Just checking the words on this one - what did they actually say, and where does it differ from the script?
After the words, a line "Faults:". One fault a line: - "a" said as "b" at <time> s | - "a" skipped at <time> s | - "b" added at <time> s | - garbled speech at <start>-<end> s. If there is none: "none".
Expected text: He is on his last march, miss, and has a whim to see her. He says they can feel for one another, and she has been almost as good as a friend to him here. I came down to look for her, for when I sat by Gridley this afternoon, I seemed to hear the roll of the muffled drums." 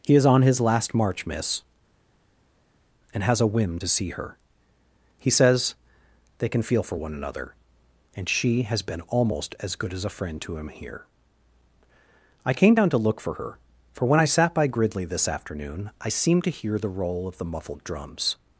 He is on his last march, miss, and has a whim to see her. He says they can feel for one another, and she has been almost as good as a friend to him here. I came down to look for her, for when I sat by Gridley this afternoon, I seemed to hear the roll of the muffled drums."
Faults:
none